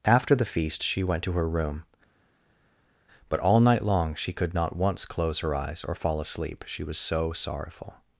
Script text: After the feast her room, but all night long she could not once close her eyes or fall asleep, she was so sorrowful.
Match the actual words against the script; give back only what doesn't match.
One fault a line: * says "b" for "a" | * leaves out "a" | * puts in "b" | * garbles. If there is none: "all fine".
* puts in "she went to"